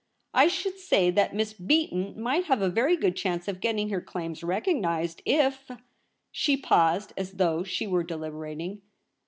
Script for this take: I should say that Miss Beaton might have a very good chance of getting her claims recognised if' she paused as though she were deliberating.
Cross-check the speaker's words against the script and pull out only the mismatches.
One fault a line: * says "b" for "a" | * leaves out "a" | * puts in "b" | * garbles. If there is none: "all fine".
all fine